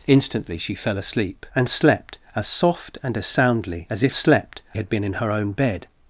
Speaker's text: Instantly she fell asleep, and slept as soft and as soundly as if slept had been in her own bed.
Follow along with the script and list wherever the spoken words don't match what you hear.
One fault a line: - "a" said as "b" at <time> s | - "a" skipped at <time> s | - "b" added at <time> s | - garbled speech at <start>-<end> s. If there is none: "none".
none